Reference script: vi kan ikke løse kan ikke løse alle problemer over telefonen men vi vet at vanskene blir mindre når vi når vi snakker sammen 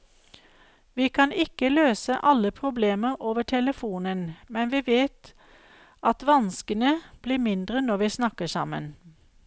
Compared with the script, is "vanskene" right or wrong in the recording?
right